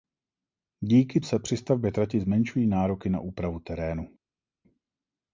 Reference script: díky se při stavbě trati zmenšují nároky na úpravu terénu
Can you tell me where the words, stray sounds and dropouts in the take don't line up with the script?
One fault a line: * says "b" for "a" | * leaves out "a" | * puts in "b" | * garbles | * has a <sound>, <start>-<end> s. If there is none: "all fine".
all fine